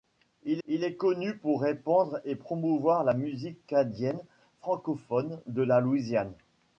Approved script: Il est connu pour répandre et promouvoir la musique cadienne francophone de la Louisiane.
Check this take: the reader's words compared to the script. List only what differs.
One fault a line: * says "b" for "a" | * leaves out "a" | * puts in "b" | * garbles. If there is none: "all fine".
* puts in "il"